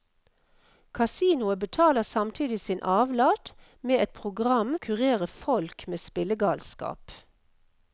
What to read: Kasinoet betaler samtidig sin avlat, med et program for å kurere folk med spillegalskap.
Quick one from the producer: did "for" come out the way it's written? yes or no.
no